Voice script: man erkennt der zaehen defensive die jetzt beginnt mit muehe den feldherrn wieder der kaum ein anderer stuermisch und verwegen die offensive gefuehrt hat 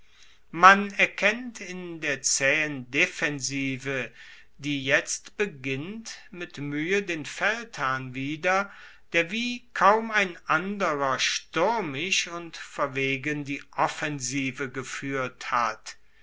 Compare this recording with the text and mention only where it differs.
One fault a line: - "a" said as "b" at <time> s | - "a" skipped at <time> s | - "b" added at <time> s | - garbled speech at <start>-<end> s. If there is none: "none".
- "in" added at 1.6 s
- "wie" added at 9.3 s